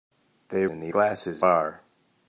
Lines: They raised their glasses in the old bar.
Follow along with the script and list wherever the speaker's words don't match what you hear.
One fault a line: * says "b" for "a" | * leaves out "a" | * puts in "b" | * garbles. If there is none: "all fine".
* leaves out "raised their glasses"
* says "glasses" for "old"